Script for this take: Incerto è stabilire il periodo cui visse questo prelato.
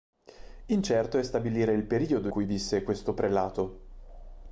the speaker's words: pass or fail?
pass